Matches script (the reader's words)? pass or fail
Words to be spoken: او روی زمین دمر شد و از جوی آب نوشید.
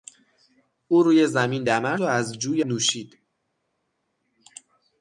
fail